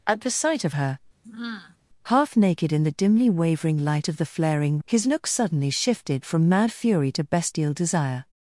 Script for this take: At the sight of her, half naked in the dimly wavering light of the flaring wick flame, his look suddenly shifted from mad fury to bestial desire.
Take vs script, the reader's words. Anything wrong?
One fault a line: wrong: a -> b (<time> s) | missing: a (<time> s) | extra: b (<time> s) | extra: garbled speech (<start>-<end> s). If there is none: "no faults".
missing: wick flame (4.8 s)